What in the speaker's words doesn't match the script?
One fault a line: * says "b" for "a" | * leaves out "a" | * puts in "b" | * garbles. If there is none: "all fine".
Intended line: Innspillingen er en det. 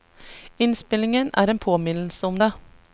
* puts in "påminnelse om"